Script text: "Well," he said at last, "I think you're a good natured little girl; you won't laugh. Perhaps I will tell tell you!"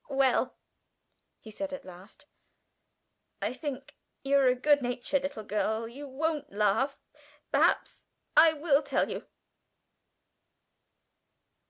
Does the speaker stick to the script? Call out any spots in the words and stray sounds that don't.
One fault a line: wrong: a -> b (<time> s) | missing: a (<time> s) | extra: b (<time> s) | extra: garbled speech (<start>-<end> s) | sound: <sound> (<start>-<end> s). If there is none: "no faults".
missing: tell (9.1 s)